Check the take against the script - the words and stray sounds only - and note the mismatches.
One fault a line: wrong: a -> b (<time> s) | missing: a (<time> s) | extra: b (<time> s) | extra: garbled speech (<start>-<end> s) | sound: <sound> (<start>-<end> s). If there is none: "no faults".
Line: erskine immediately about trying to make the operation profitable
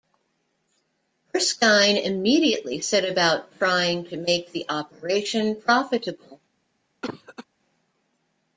extra: set (2.8 s)
sound: cough (7.0-7.4 s)